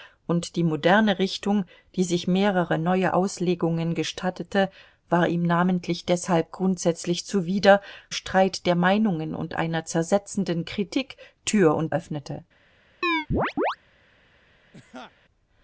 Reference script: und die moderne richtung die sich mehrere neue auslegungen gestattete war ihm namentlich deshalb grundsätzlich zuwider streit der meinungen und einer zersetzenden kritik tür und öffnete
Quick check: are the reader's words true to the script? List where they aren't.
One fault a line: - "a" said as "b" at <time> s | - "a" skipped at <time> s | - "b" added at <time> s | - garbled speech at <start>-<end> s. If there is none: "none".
none